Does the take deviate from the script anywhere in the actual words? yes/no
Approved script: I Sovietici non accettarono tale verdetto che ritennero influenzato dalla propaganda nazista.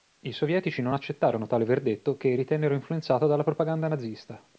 no